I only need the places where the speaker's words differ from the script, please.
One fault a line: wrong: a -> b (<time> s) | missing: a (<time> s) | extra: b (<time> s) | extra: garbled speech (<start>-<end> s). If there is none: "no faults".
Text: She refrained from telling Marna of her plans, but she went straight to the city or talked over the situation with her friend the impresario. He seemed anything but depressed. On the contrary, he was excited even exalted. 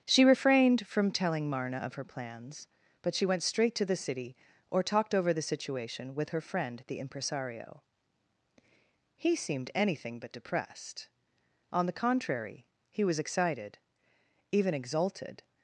no faults